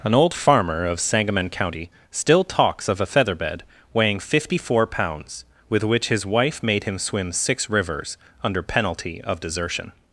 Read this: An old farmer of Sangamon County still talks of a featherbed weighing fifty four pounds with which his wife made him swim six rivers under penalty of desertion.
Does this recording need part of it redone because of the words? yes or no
no